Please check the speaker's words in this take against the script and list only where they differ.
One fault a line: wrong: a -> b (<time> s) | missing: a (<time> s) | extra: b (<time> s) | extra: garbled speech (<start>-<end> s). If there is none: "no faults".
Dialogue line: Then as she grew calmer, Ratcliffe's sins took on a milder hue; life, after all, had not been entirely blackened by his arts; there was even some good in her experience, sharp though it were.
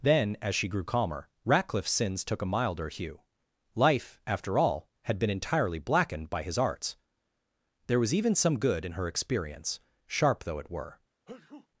missing: on (2.4 s)
missing: not (5.2 s)